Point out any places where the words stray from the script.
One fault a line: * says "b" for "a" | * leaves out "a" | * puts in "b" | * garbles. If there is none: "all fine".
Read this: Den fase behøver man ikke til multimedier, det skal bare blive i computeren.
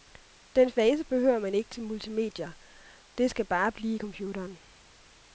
all fine